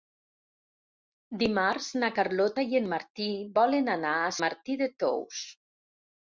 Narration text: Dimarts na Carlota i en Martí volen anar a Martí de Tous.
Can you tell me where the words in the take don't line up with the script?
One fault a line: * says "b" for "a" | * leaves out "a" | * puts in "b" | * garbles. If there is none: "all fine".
all fine